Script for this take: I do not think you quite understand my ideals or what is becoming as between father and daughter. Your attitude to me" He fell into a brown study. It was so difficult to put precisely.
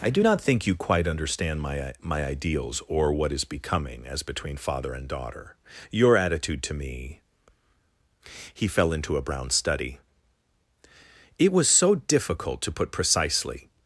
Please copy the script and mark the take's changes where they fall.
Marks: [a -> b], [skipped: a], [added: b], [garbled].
I do not think you quite understand my [added: my] ideals or what is becoming as between father and daughter. Your attitude to me" He fell into a brown study. It was so difficult to put precisely.